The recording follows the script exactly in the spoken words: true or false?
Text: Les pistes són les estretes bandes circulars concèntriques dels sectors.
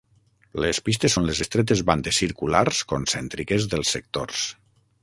true